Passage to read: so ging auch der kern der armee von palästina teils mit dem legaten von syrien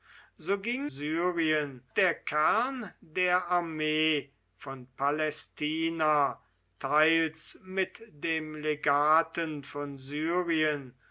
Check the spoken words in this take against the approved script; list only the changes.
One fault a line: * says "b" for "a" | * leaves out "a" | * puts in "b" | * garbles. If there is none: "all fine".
* says "syrien" for "auch"